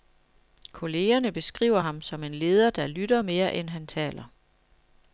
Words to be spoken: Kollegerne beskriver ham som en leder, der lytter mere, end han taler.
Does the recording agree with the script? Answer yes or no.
yes